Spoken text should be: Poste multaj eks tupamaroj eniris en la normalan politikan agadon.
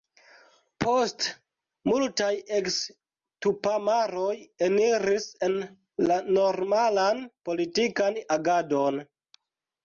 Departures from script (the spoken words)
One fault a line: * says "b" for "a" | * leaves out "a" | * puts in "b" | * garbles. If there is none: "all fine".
all fine